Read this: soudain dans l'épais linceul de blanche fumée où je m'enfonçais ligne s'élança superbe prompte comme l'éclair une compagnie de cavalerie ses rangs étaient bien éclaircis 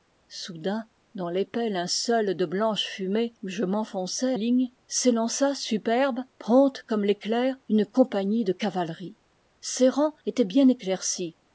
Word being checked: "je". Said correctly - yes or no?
yes